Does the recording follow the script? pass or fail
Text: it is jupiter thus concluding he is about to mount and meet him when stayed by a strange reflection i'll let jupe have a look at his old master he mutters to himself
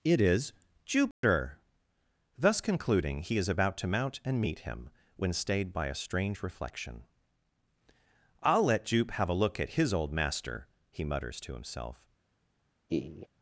pass